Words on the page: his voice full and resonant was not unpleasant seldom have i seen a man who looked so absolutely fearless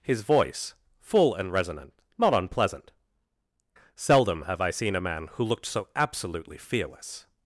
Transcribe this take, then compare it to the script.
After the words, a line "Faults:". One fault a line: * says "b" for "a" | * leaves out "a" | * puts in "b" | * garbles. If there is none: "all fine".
his voice full and resonant not unpleasant seldom have i seen a man who looked so absolutely fearless
Faults:
* leaves out "was"